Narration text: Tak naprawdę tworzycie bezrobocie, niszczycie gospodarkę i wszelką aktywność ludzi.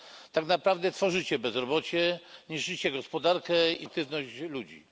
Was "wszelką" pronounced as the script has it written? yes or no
no